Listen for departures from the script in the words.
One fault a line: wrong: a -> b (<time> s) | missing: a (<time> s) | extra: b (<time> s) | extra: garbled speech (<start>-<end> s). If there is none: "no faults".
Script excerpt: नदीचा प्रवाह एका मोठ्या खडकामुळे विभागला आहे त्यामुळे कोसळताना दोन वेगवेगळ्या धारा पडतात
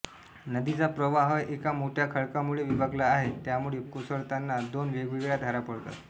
no faults